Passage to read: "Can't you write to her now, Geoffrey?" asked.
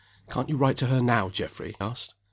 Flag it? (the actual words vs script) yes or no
no